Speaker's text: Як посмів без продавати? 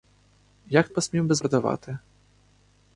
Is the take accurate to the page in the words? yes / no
yes